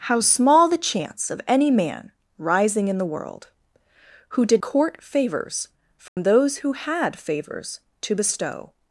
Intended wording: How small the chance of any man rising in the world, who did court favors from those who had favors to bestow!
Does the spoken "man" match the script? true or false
true